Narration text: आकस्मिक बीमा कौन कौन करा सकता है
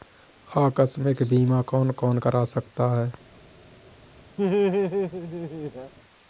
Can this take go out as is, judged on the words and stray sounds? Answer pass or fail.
fail